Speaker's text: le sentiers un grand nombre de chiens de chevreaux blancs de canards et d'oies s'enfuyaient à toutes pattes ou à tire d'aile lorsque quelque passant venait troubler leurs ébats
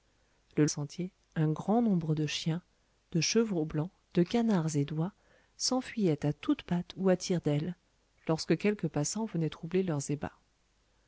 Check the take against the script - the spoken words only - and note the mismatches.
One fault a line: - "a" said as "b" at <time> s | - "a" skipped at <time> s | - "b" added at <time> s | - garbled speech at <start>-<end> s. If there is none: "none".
none